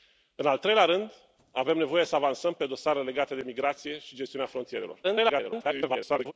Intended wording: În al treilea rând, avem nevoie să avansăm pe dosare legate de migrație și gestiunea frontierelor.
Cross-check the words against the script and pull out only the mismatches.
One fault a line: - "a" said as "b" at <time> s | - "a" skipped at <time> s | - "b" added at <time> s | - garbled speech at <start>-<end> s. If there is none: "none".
- garbled speech at 5.0-6.3 s